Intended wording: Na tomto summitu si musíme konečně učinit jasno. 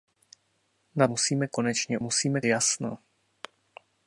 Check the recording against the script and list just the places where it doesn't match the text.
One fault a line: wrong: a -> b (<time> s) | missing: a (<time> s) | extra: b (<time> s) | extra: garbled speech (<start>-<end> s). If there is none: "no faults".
missing: tomto summitu si (1.1 s)
wrong: učinit -> musíme (2.0 s)